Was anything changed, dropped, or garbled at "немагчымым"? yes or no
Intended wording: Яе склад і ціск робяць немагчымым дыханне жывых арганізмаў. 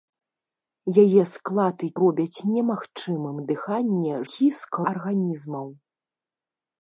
no